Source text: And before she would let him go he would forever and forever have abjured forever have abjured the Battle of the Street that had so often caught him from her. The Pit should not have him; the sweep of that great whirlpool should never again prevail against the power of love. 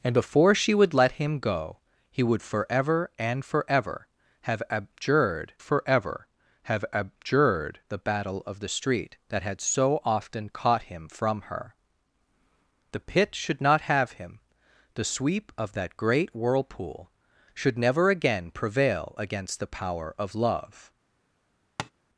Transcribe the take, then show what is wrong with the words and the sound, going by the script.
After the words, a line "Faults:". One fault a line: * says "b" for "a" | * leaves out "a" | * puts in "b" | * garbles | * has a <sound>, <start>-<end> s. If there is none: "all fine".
And before she would let him go he would forever and forever have abjured forever have abjured the Battle of the Street that had so often caught him from her. The Pit should not have him; the sweep of that great whirlpool should never again prevail against the power of love.
Faults:
* has a tap, 21.8-21.9 s